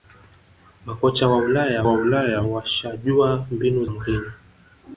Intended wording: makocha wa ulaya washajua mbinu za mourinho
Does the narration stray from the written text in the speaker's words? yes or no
yes